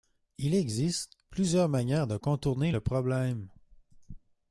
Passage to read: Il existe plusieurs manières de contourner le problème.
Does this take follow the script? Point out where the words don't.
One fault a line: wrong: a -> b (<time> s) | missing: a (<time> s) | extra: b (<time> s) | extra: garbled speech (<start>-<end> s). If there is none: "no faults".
no faults